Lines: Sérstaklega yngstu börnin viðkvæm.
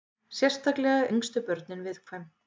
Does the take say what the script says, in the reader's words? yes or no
yes